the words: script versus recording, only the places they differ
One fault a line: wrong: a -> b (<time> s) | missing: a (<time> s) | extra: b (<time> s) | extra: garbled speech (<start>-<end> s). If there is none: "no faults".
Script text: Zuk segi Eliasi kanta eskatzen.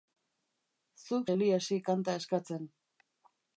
missing: segi (1.3 s)